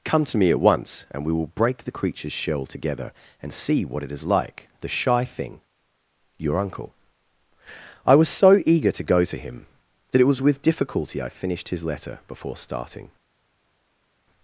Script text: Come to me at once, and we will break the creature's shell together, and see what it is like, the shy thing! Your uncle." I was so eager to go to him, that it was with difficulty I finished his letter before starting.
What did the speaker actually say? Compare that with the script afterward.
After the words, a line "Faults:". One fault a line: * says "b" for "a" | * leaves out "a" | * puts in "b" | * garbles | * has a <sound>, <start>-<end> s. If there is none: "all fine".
Come to me at once, and we will break the creature's shell together, and see what it is like, the shy thing! Your uncle." I was so eager to go to him, that it was with difficulty I finished his letter before starting.
Faults:
all fine